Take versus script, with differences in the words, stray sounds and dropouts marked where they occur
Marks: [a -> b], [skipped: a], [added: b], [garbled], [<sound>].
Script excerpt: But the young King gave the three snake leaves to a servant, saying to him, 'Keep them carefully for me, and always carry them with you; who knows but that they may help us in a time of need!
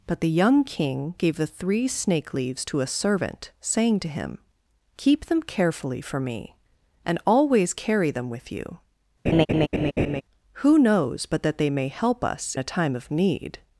But the young King gave the three snake leaves to a servant, saying to him, 'Keep them carefully for me, and always carry them with you; [laugh] who knows but that they may help us [skipped: in] a time of need!